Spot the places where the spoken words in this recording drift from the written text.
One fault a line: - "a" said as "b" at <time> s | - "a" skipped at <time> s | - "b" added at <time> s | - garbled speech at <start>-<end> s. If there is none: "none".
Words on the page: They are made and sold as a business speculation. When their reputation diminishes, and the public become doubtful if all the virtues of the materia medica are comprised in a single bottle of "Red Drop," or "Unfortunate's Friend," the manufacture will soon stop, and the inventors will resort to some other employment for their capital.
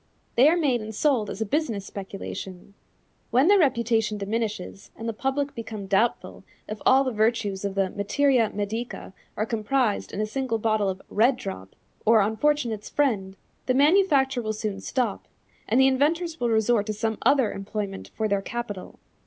none